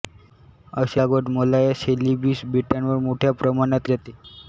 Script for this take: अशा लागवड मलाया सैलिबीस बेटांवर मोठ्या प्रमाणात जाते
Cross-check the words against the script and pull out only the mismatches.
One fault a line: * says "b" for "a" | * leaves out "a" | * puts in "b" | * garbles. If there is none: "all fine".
all fine